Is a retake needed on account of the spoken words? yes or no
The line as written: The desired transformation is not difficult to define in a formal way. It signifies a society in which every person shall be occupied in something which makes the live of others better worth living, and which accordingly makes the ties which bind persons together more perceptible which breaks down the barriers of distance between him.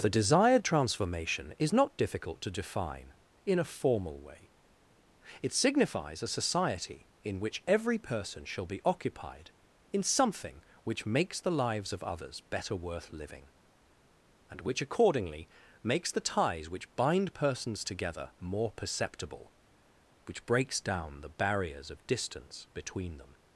yes